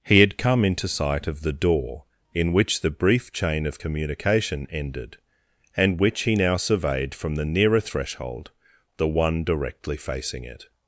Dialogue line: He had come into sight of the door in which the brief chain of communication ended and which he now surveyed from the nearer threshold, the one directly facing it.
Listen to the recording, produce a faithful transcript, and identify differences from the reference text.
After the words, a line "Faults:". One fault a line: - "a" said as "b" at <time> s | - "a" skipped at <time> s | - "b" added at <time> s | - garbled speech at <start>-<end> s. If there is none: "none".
He had come into sight of the door in which the brief chain of communication ended and which he now surveyed from the nearer threshold, the one directly facing it.
Faults:
none